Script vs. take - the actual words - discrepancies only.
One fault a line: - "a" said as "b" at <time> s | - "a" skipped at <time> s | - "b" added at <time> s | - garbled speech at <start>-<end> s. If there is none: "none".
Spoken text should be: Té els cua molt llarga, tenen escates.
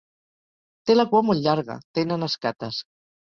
- "els" said as "la" at 0.9 s